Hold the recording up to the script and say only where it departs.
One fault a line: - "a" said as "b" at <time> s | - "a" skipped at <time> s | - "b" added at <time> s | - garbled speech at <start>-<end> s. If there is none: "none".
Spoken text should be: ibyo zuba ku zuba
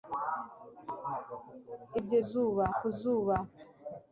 none